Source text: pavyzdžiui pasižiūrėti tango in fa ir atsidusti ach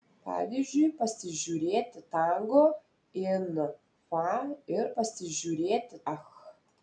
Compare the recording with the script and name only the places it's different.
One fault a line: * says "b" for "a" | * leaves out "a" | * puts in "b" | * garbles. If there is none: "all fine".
* says "pasižiūrėti" for "atsidusti"